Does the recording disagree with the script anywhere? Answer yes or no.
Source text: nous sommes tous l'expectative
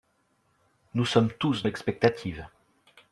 no